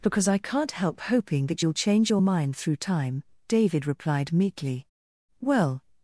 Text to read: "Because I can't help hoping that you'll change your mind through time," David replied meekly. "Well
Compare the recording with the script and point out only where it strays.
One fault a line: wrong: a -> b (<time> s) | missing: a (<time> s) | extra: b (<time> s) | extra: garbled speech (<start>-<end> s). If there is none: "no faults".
no faults